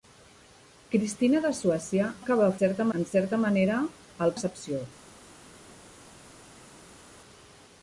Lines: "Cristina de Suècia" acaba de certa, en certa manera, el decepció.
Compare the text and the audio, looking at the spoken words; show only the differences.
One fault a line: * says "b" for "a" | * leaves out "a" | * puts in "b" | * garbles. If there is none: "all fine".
all fine